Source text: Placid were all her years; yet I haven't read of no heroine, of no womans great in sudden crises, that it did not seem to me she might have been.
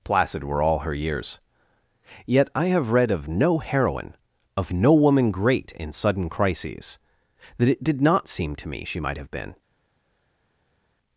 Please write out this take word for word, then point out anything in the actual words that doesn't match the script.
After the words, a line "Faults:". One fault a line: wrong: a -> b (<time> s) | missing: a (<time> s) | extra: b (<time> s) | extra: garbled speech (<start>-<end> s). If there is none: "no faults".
Placid were all her years; yet I have read of no heroine, of no woman great in sudden crises, that it did not seem to me she might have been.
Faults:
wrong: haven't -> have (2.7 s)
wrong: womans -> woman (4.9 s)